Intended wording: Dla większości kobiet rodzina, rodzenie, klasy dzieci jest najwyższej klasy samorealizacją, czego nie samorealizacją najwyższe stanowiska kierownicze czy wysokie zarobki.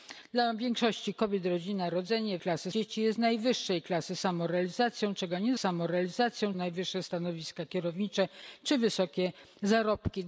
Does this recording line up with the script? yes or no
yes